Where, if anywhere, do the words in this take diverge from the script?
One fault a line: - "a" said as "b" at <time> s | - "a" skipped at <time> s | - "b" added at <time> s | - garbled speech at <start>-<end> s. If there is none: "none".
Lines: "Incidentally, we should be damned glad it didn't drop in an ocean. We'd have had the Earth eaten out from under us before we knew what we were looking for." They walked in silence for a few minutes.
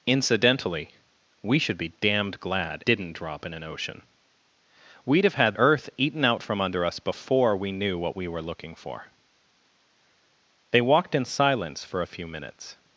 - "it" skipped at 2.8 s
- "the" skipped at 5.5 s